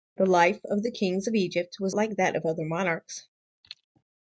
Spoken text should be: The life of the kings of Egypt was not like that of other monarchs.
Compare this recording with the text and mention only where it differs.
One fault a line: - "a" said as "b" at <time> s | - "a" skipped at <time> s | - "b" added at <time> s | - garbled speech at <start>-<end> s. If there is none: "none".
- "not" skipped at 1.9 s